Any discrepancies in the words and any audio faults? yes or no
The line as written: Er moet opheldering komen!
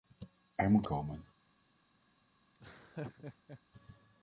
yes